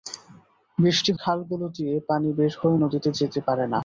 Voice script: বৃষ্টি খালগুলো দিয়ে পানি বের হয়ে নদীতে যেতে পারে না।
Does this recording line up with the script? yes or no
yes